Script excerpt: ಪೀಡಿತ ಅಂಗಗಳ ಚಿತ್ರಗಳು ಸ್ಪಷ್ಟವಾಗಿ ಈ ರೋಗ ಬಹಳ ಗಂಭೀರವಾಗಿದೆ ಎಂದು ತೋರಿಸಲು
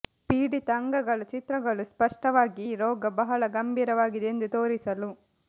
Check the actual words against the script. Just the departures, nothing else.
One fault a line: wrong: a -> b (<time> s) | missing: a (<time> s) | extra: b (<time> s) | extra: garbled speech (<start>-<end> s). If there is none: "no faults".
no faults